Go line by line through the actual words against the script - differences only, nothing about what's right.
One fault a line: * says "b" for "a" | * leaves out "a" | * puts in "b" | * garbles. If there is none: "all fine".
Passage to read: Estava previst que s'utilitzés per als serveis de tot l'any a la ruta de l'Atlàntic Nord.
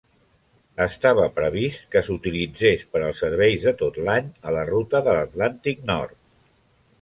all fine